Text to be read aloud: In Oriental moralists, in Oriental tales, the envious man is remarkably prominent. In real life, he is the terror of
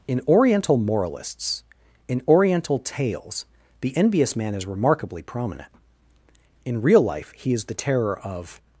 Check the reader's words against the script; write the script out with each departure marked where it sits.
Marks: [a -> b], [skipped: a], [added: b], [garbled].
In Oriental moralists, in Oriental tales, the envious man is remarkably prominent. In real life, he is the terror of